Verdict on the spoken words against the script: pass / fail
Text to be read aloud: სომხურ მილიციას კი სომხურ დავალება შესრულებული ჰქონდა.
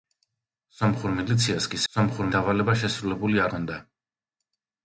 pass